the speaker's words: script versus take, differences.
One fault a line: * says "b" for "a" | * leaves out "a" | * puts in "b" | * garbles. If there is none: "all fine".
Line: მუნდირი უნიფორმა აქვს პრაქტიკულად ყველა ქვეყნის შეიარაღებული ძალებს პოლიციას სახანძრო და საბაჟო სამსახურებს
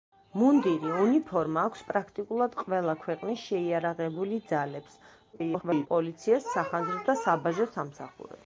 * garbles